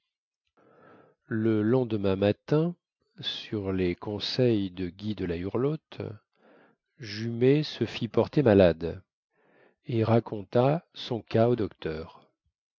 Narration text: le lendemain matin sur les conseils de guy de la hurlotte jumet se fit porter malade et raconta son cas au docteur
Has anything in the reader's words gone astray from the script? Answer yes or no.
no